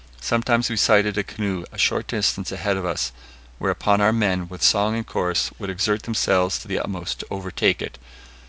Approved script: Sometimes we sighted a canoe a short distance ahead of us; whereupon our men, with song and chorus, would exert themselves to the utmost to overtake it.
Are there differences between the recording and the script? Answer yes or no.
no